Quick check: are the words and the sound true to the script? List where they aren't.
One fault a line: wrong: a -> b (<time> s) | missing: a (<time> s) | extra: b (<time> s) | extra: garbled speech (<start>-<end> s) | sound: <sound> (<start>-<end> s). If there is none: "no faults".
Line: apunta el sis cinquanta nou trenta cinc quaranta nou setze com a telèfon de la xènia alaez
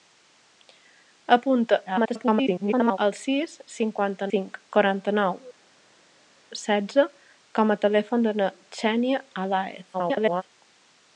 extra: garbled speech (1.9-3.0 s)
missing: nou trenta (4.3 s)
extra: garbled speech (9.9-10.4 s)